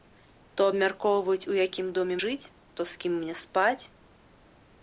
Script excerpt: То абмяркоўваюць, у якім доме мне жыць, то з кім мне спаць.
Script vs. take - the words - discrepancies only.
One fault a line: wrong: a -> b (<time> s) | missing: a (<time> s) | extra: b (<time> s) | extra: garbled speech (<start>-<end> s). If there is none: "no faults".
missing: мне (2.2 s)